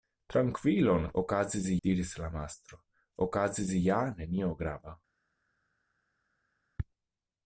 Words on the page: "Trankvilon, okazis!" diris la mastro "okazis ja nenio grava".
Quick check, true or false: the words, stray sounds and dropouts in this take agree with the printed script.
true